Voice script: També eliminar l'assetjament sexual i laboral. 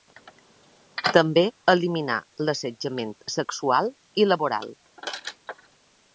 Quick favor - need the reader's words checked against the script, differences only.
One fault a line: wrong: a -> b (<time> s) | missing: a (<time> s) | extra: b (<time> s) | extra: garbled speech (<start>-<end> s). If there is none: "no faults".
no faults